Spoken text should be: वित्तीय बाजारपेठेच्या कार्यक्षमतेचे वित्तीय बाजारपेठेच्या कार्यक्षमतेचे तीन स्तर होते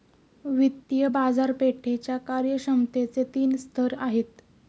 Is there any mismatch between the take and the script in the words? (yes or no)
yes